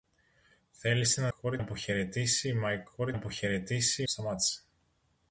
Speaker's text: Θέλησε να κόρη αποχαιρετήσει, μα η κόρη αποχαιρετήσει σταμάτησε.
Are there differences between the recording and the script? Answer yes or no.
no